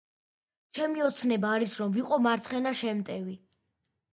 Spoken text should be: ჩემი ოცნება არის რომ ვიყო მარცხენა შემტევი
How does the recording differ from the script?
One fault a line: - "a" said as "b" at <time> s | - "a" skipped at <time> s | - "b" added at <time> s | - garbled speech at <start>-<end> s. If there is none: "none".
none